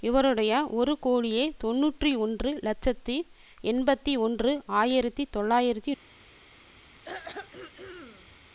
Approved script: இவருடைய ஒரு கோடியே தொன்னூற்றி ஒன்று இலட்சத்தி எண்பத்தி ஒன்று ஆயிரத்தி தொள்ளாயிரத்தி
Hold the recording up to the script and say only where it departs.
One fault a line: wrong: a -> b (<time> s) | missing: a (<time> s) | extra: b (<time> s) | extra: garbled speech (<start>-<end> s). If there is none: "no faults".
no faults